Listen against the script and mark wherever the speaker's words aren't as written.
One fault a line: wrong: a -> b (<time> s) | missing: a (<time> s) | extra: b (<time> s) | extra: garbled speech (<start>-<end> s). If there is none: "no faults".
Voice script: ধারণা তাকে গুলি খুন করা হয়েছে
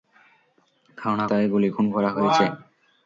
no faults